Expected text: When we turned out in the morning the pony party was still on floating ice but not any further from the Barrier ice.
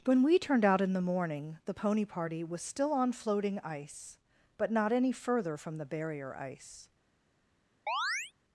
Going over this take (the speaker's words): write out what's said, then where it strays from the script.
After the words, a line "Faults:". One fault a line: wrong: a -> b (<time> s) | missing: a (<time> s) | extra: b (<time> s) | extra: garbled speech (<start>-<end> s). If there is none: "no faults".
When we turned out in the morning the pony party was still on floating ice but not any further from the Barrier ice.
Faults:
no faults